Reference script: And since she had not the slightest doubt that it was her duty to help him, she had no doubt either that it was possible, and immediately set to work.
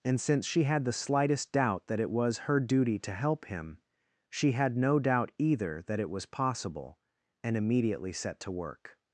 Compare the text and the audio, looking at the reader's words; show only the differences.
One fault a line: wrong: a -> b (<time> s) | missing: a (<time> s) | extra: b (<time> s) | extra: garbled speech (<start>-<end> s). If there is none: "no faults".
missing: not (0.8 s)